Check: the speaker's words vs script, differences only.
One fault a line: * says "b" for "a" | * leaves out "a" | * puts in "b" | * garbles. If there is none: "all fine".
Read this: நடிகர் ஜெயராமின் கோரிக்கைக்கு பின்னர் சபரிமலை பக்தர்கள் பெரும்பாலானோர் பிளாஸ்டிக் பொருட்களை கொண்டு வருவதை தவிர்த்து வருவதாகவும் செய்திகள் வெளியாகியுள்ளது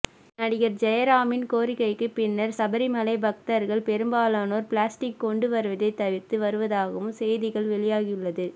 * leaves out "பொருட்களை"